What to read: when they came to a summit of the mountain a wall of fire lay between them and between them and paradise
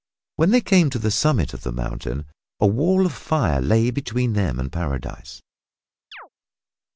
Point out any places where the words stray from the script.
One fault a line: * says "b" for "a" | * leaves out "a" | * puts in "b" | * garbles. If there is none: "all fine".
* says "the" for "a"
* leaves out "between them and"